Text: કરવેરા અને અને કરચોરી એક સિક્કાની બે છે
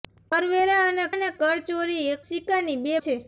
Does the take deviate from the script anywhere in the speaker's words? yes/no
no